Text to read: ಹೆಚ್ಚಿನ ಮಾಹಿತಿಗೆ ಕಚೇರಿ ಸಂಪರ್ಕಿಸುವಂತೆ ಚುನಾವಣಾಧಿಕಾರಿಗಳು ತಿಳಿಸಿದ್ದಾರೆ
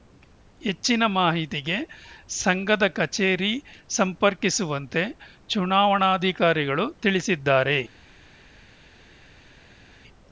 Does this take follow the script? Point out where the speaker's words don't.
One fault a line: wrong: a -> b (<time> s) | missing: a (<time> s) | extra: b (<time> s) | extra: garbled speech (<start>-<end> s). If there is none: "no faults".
extra: ಸಂಘದ (2.4 s)